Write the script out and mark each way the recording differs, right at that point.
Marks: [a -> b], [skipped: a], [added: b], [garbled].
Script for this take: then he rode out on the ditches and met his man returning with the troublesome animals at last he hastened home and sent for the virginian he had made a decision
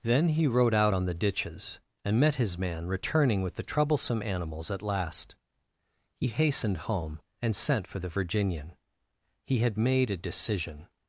then he rode out on the ditches and met his man returning with the troublesome animals at last he hastened home and sent for the virginian he had made a decision